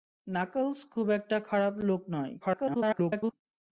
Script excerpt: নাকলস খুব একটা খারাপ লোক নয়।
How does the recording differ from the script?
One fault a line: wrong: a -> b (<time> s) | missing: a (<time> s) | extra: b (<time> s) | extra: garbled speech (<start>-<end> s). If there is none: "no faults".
extra: garbled speech (2.4-3.3 s)